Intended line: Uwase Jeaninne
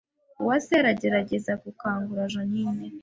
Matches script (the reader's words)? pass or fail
fail